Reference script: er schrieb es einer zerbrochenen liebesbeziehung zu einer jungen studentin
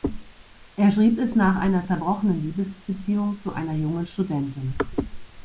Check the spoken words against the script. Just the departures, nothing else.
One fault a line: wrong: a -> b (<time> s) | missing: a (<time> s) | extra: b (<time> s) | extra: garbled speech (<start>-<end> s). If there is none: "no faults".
extra: nach (1.4 s)